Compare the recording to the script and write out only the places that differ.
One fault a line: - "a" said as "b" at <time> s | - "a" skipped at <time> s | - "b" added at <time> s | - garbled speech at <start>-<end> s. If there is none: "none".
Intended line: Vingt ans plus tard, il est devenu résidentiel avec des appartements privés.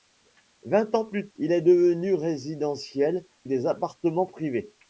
- "tard" skipped at 1.3 s
- "avec" skipped at 3.3 s